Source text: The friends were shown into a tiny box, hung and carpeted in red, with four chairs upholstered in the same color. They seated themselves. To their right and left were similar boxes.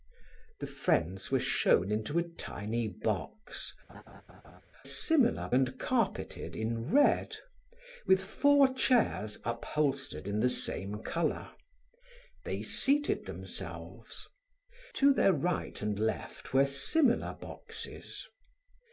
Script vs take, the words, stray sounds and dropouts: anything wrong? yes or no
yes